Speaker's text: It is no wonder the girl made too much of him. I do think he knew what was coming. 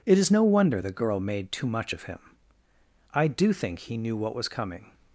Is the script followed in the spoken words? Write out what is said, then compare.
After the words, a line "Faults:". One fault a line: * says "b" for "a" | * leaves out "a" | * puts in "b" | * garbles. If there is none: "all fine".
It is no wonder the girl made too much of him. I do think he knew what was coming.
Faults:
all fine